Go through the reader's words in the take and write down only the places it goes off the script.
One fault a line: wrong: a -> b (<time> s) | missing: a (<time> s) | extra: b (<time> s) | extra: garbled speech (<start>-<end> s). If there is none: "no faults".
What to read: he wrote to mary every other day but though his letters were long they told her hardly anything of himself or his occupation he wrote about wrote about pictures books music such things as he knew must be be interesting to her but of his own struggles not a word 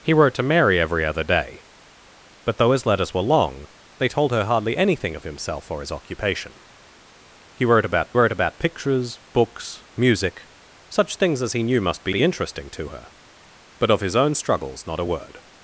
no faults